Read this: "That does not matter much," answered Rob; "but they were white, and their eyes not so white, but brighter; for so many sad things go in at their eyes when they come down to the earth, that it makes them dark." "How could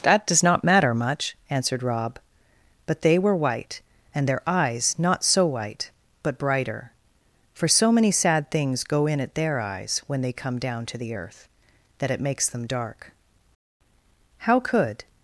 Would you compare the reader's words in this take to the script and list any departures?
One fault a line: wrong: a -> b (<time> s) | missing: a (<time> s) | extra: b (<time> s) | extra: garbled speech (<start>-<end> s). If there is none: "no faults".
no faults